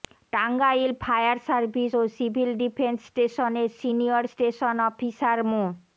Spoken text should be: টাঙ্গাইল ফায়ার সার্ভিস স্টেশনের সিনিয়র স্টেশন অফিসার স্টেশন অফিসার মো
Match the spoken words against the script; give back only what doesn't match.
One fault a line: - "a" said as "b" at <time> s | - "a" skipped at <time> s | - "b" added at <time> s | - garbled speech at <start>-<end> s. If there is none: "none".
- "ও সিভিল ডিফেন্স" added at 1.9 s
- "স্টেশন অফিসার" skipped at 5.4 s